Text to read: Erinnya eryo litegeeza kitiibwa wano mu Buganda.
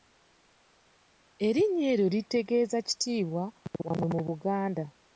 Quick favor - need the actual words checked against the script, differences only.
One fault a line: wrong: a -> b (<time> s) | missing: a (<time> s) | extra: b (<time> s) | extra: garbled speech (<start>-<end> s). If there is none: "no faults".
no faults